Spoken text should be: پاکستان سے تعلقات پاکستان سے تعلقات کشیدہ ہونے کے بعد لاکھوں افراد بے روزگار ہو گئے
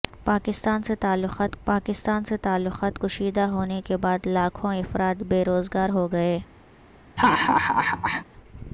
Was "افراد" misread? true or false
false